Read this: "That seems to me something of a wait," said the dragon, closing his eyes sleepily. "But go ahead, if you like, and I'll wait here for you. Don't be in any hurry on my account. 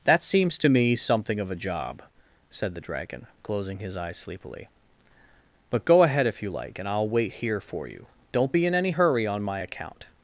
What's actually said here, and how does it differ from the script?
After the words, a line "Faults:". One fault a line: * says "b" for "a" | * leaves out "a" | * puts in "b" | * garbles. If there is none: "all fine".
"That seems to me something of a job," said the dragon, closing his eyes sleepily. "But go ahead, if you like, and I'll wait here for you. Don't be in any hurry on my account.
Faults:
* says "job" for "wait"